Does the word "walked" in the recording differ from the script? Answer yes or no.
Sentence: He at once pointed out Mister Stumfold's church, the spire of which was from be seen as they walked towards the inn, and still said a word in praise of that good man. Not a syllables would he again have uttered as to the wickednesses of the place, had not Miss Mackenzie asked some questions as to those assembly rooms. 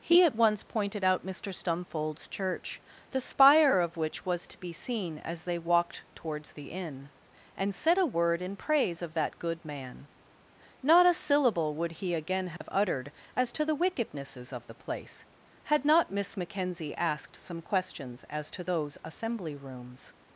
no